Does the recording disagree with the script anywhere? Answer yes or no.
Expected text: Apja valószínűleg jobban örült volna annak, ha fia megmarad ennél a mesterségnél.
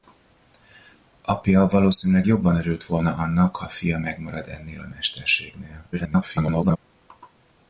yes